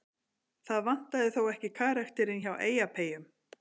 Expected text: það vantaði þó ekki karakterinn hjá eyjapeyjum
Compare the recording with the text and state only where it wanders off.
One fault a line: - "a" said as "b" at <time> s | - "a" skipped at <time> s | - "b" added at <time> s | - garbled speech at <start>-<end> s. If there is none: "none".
none